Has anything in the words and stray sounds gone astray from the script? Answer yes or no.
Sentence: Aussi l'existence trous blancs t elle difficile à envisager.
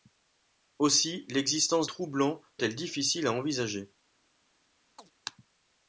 yes